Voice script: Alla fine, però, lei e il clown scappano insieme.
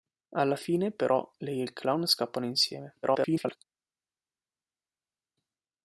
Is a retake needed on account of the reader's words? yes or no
yes